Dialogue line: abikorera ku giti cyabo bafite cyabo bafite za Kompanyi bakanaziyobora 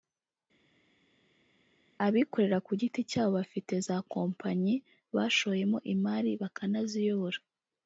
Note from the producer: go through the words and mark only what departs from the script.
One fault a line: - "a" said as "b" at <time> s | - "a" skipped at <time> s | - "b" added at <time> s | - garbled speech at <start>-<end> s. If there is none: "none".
- "cyabo bafite za Kompanyi" said as "za Kompanyi bashoyemo imari" at 3.9 s